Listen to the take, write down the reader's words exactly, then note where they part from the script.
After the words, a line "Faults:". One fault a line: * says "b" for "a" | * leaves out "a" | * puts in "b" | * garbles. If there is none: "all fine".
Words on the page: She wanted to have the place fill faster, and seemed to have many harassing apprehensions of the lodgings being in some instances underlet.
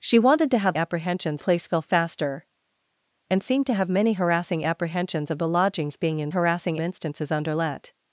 She wanted to have apprehensions place fill faster, and seemed to have many harassing apprehensions of the lodgings being in harassing instances underlet.
Faults:
* says "apprehensions" for "the"
* says "harassing" for "some"